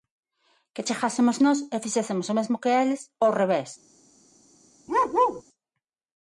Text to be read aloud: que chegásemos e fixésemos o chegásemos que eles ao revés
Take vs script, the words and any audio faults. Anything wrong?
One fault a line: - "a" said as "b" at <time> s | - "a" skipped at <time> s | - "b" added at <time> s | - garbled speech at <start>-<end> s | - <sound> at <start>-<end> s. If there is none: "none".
- "nós" added at 1.4 s
- "chegásemos" said as "mesmo" at 2.4 s
- bark at 4.9-5.4 s